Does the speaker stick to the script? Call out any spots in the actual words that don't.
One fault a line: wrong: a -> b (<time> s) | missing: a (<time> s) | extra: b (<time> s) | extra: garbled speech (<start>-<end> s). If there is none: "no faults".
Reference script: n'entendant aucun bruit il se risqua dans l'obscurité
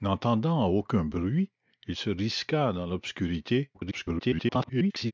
extra: garbled speech (3.7-5.1 s)